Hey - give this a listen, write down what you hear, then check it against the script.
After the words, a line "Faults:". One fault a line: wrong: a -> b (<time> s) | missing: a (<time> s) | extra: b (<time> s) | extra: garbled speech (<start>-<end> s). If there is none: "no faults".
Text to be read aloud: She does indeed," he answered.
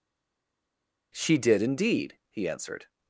She did indeed," he answered.
Faults:
wrong: does -> did (1.4 s)